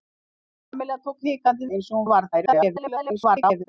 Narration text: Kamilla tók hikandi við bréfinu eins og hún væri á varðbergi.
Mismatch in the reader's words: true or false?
true